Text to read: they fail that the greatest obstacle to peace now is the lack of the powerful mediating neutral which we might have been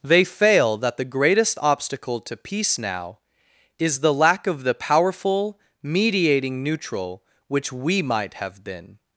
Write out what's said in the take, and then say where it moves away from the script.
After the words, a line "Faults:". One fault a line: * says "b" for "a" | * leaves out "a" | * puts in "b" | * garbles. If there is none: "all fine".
they fail that the greatest obstacle to peace now is the lack of the powerful mediating neutral which we might have been
Faults:
all fine